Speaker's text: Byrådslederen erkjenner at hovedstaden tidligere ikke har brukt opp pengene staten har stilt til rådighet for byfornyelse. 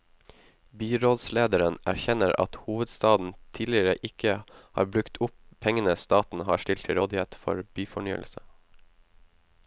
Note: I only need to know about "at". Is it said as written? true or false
true